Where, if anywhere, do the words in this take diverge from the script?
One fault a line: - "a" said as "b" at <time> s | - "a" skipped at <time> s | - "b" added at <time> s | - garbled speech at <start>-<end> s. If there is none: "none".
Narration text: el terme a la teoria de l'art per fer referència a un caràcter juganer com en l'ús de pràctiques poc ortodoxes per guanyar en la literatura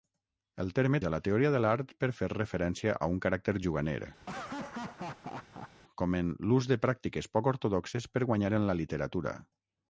none